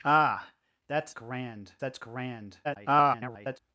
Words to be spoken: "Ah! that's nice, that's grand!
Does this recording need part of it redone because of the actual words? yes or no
yes